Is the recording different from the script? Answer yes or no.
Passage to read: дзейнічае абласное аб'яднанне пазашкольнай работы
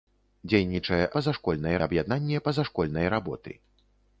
yes